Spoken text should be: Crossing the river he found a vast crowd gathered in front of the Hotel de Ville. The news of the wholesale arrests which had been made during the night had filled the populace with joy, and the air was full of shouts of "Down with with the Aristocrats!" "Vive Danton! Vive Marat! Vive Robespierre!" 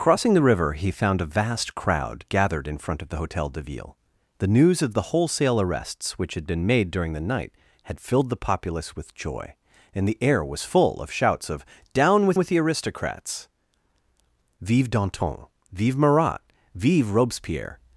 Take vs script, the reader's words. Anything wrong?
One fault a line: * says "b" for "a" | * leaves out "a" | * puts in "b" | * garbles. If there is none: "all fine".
all fine